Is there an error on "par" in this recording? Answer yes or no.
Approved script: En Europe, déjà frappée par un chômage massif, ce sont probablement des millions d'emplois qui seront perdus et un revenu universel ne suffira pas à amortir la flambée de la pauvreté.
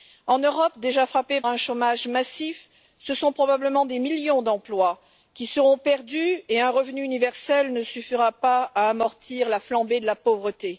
yes